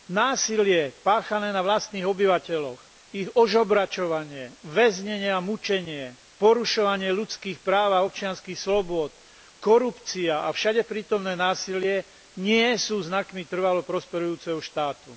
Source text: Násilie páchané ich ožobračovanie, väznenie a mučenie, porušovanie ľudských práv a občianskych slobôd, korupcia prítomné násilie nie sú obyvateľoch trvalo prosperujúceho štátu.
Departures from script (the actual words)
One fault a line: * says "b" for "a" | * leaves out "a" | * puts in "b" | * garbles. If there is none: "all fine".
* puts in "na vlastných obyvateľoch"
* puts in "a všade"
* says "znakmi" for "obyvateľoch"